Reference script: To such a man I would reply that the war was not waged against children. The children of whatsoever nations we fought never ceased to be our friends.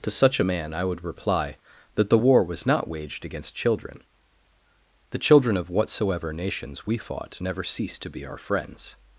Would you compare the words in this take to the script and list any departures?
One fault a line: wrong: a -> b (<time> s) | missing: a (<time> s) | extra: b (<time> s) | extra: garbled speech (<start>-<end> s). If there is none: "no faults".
no faults